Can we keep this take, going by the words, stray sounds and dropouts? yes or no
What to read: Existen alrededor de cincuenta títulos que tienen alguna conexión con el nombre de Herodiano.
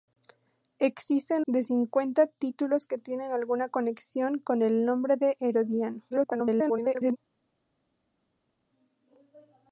no